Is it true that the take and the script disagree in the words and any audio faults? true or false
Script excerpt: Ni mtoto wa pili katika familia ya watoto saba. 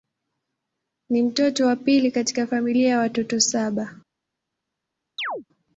true